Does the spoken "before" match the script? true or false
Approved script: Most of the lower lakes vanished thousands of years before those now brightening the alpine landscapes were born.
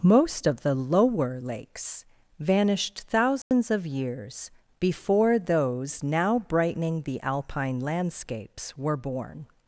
true